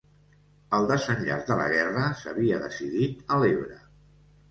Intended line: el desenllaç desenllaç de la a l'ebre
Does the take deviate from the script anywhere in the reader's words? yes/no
yes